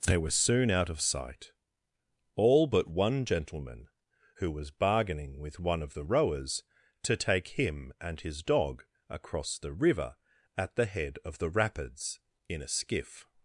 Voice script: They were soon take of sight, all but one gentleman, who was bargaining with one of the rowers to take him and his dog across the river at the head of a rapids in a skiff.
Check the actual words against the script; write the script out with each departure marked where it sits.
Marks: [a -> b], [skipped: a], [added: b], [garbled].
They were soon [take -> out] of sight, all but one gentleman, who was bargaining with one of the rowers to take him and his dog across the river at the head of [a -> the] rapids in a skiff.